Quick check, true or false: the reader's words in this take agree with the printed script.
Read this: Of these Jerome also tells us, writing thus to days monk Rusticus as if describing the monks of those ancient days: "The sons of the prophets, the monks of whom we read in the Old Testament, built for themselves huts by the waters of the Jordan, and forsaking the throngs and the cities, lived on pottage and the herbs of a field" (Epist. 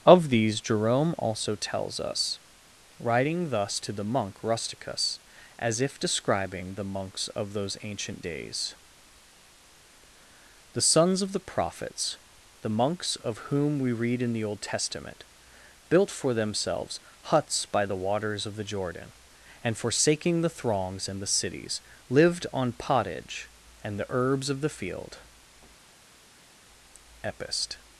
false